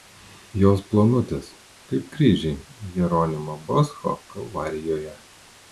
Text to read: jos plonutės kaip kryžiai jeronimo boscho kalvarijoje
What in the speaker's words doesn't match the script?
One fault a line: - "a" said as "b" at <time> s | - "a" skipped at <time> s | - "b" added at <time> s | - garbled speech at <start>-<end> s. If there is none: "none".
none